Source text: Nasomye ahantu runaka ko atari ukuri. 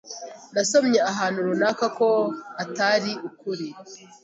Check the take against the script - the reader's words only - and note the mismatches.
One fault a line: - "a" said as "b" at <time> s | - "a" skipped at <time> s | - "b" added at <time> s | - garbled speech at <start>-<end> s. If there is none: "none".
none